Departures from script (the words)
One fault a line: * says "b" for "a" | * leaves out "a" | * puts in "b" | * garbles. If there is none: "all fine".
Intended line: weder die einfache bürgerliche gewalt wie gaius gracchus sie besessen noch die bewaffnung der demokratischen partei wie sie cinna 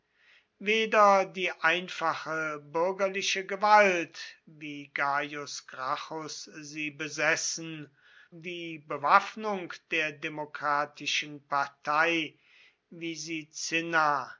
* leaves out "noch"